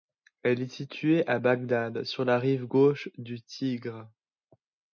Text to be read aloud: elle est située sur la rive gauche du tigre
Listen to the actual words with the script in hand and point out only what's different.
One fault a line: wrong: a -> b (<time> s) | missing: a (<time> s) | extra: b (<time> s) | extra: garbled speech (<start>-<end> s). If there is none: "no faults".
extra: à bagdad (1.3 s)